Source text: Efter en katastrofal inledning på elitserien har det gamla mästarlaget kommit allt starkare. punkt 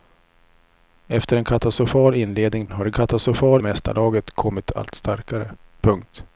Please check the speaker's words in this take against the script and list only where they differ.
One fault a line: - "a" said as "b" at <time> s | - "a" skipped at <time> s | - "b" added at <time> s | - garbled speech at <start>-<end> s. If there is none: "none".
- "på elitserien" skipped at 2.7 s
- "gamla" said as "katastrofal" at 2.9 s